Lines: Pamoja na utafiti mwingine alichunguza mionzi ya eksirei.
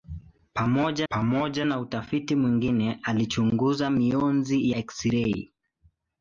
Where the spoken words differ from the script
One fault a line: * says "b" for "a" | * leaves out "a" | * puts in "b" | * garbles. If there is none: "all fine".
* puts in "pamoja"
* leaves out "ya"